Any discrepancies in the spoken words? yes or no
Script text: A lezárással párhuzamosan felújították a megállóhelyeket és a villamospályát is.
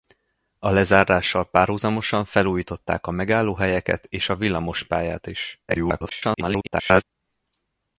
yes